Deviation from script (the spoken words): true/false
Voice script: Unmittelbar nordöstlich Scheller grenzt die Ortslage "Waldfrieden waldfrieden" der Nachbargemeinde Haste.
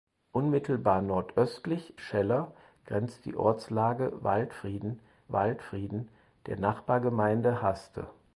false